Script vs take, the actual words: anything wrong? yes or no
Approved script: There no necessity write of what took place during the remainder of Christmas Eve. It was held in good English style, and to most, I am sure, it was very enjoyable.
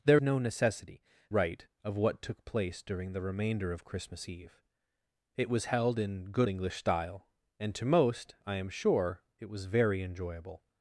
no